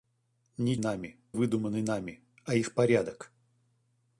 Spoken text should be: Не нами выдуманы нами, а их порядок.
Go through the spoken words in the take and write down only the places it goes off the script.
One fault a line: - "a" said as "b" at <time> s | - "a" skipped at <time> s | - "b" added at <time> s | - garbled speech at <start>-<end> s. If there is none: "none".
none